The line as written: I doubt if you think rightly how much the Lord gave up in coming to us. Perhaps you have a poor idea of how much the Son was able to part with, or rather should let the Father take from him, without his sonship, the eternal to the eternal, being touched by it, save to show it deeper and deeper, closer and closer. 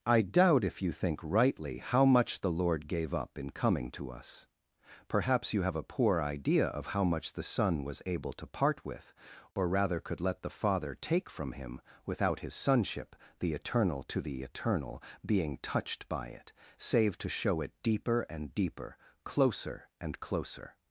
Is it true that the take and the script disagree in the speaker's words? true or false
true